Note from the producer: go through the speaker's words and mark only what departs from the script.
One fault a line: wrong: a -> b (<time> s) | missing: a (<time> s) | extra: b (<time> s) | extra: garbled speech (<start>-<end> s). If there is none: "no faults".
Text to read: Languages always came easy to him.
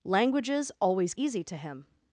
missing: came (1.1 s)